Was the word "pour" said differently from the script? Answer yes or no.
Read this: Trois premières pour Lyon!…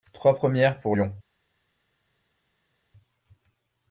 no